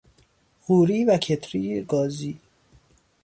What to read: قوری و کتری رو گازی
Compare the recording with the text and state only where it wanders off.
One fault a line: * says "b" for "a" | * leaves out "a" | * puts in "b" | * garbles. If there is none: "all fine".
* leaves out "رو"